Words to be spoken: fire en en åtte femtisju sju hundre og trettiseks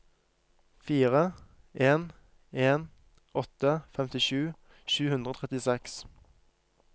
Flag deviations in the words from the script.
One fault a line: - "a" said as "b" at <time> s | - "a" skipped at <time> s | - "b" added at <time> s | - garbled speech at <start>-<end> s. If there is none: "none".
none